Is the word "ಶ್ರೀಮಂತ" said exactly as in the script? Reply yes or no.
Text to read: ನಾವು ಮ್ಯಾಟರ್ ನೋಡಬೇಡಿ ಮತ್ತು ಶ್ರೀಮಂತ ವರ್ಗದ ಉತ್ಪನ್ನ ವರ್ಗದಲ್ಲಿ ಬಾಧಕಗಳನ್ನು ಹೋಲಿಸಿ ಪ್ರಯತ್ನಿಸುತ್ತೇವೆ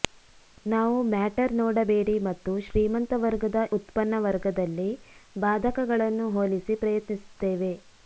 yes